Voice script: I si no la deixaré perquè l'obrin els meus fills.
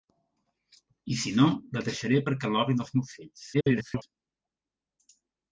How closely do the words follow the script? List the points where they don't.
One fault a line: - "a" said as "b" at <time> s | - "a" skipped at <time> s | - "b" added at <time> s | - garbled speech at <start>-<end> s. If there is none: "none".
- garbled speech at 3.5-4.0 s